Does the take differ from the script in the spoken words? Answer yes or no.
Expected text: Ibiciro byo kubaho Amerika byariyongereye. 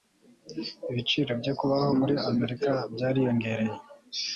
yes